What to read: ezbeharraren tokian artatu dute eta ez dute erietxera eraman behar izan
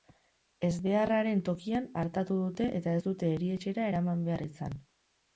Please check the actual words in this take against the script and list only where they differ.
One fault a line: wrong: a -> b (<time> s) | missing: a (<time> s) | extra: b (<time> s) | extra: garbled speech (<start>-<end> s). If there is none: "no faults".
no faults